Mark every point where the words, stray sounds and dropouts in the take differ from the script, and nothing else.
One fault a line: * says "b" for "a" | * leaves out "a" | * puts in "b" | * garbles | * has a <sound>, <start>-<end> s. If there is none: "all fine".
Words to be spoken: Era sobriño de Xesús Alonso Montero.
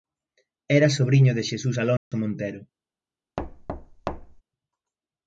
* has a dropout, 2.0-2.1 s
* has a thud, 3.4-4.4 s